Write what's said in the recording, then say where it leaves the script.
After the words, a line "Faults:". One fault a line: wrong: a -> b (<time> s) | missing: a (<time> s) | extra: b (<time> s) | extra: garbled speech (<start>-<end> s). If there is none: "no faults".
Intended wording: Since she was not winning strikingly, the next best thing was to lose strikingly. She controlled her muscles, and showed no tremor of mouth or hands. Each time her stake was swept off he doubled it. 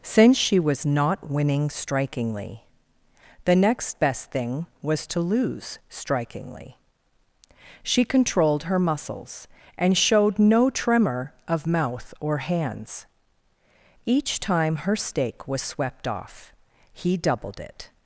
Since she was not winning strikingly, the next best thing was to lose strikingly. She controlled her muscles, and showed no tremor of mouth or hands. Each time her stake was swept off he doubled it.
Faults:
no faults